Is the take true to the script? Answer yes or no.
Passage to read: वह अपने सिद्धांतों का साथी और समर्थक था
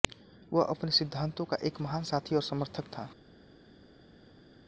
no